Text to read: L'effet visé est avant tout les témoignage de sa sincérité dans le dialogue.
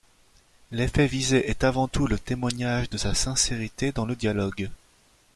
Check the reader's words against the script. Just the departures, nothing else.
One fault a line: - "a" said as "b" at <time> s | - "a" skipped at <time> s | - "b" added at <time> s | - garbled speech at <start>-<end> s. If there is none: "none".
- "les" said as "le" at 2.1 s